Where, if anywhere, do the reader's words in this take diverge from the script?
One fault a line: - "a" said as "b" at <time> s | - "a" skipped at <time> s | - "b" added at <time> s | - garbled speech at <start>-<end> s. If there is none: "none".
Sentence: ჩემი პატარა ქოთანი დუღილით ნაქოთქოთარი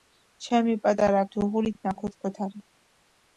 - "ქოთანი" skipped at 1.2 s